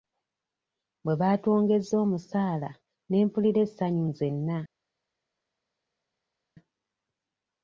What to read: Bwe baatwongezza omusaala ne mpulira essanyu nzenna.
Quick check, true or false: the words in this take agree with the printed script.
true